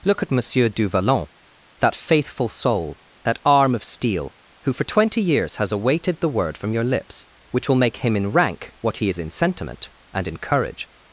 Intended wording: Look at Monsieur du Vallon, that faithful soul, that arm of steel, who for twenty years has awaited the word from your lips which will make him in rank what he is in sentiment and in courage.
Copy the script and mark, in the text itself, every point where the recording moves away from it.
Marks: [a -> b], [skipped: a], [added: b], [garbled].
Look at Monsieur du Vallon, that faithful soul, that arm of steel, who for twenty years has awaited the word from your lips which will make him in rank what he is in sentiment and in courage.